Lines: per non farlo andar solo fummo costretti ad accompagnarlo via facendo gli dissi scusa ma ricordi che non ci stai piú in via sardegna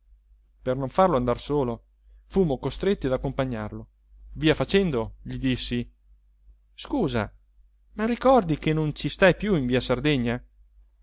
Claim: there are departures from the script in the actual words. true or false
false